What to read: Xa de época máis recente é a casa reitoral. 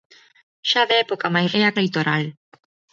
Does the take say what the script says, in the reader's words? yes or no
no